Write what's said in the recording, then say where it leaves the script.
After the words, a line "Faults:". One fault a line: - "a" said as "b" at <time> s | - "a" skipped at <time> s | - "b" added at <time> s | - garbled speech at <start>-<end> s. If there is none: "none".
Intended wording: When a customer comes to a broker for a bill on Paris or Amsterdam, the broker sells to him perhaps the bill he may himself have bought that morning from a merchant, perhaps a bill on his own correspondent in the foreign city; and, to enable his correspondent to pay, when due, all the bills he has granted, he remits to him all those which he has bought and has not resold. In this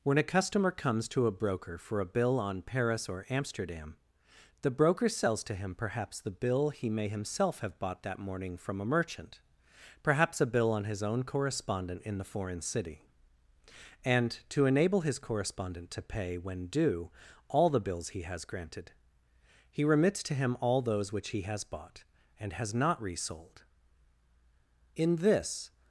When a customer comes to a broker for a bill on Paris or Amsterdam, the broker sells to him perhaps the bill he may himself have bought that morning from a merchant, perhaps a bill on his own correspondent in the foreign city; and, to enable his correspondent to pay, when due, all the bills he has granted, he remits to him all those which he has bought and has not resold. In this
Faults:
none